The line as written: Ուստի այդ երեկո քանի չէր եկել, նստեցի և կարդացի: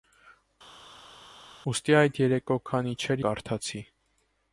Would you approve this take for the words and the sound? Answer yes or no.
no